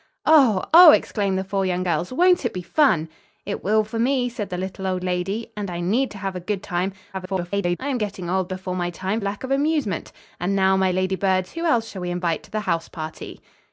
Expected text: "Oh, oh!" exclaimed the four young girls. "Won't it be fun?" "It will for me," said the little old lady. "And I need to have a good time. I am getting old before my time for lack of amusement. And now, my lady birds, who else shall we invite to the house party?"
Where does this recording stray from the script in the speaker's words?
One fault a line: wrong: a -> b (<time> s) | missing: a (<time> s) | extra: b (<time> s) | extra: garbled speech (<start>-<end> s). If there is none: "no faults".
extra: garbled speech (7.1-7.8 s)
missing: for (9.2 s)